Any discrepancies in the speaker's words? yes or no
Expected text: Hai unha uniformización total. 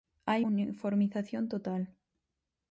yes